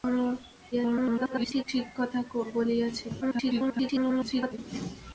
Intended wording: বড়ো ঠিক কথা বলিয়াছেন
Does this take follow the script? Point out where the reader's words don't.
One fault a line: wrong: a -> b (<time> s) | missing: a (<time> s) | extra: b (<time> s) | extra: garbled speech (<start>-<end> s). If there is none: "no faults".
extra: garbled speech (0.7-1.6 s)
extra: garbled speech (3.2-4.6 s)